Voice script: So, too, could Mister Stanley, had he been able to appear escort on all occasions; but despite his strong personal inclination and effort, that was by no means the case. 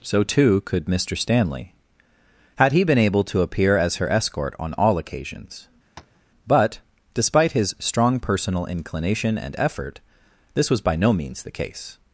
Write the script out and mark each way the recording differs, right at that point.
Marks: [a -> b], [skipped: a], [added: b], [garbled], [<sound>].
So, too, could Mister Stanley, had he been able to appear [added: as her] escort on all occasions; [tap] but despite his strong personal inclination and effort, [that -> this] was by no means the case.